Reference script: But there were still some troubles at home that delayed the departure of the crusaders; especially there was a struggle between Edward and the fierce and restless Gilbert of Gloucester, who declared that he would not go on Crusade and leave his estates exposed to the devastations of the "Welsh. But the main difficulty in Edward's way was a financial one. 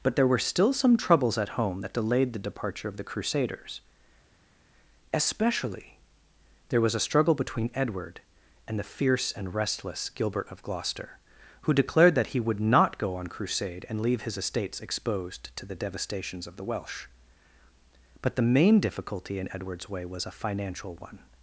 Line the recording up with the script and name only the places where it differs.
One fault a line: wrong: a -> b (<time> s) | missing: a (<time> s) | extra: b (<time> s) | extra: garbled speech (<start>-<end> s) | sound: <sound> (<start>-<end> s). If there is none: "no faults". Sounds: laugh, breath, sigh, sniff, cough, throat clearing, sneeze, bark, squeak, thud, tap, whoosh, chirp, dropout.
no faults